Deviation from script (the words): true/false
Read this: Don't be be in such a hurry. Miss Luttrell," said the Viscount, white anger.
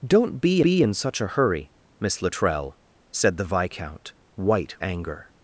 false